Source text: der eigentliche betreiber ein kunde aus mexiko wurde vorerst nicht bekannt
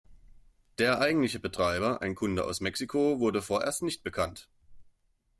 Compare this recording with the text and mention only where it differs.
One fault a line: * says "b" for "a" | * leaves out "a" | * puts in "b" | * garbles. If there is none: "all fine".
all fine